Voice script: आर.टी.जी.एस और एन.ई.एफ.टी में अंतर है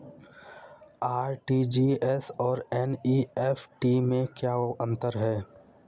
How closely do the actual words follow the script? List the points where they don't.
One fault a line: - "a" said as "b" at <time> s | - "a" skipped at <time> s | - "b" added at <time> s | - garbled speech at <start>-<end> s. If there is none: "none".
- "क्या" added at 4.3 s